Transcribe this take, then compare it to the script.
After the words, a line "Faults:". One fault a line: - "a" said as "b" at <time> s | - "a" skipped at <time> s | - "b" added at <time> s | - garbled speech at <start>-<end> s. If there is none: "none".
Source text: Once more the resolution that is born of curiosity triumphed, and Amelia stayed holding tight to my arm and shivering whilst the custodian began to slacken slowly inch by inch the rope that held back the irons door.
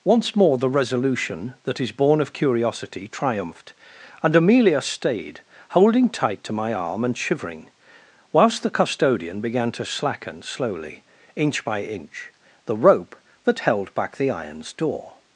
Once more the resolution that is born of curiosity triumphed, and Amelia stayed holding tight to my arm and shivering whilst the custodian began to slacken slowly inch by inch the rope that held back the irons door.
Faults:
none